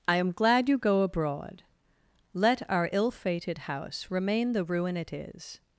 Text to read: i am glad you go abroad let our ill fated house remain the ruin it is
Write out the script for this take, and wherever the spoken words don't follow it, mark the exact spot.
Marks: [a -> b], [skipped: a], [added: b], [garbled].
i am glad you go abroad let our ill fated house remain the ruin it is